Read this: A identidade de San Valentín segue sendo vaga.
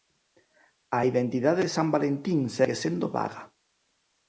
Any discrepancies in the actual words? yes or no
no